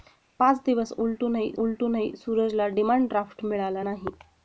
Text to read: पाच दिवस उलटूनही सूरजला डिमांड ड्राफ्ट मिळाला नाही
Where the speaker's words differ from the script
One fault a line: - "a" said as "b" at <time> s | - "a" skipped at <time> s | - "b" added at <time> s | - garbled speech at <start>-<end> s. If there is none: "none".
- "उलटूनही" added at 1.5 s